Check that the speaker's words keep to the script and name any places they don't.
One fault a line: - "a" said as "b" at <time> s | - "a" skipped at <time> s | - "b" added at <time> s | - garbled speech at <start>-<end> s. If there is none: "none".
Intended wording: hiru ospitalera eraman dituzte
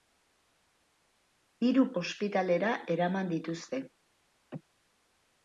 none